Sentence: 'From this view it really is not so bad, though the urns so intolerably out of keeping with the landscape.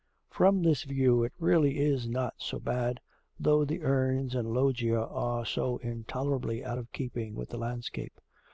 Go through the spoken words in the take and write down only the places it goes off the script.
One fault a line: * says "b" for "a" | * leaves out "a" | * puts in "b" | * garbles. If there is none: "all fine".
* puts in "and loggia are"